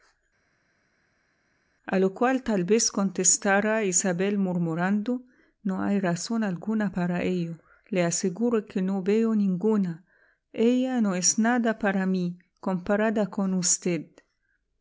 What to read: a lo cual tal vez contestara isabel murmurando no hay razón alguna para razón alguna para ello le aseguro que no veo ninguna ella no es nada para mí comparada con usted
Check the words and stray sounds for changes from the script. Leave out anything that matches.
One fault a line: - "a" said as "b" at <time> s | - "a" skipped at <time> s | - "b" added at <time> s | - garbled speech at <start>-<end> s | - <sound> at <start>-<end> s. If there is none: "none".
- "razón alguna para" skipped at 7.2 s